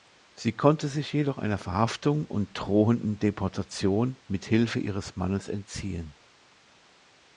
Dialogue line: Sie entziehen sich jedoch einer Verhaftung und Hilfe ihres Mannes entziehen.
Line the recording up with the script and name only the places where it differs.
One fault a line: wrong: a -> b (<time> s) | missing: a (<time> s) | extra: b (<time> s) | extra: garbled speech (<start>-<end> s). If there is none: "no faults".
wrong: entziehen -> konnte (0.5 s)
extra: drohenden Deportation mit (2.6 s)